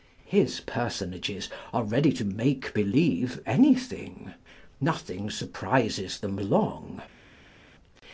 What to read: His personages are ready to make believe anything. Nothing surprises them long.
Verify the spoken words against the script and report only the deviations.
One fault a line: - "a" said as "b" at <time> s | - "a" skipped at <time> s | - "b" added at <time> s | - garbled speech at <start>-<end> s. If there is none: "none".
none